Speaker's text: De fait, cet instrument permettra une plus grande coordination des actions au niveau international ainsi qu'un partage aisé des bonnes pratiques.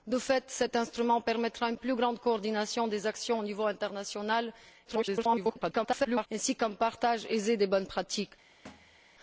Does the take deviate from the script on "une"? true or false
false